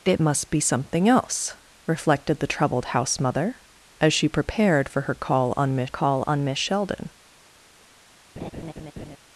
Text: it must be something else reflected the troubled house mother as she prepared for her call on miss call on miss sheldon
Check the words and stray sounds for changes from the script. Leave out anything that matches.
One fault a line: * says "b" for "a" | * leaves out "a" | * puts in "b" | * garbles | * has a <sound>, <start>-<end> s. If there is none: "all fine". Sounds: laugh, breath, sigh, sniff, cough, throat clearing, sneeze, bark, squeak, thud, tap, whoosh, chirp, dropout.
* has a laugh, 8.4-9.2 s